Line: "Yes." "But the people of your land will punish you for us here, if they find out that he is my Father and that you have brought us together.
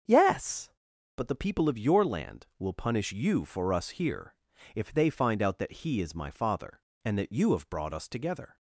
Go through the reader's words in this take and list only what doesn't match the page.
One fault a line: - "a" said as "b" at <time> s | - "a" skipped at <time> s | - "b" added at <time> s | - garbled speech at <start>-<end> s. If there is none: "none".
none